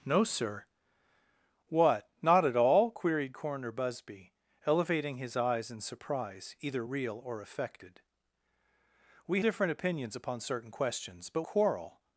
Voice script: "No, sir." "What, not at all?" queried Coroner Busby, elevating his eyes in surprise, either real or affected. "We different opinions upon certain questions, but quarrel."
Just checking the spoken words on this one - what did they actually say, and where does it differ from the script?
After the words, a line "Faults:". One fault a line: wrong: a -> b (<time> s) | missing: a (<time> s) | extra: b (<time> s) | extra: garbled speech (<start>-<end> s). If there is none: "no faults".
"No, sir." "What, not at all?" queried Coroner Busby, elevating his eyes in surprise, either real or affected. "We different opinions upon certain questions, but quarrel."
Faults:
no faults